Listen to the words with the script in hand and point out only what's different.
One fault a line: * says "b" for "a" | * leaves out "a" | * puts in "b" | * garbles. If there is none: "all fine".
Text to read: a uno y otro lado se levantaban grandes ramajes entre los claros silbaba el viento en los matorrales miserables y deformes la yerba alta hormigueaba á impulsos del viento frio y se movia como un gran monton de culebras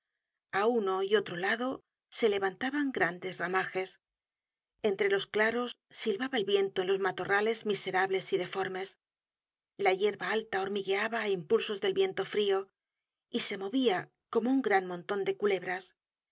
all fine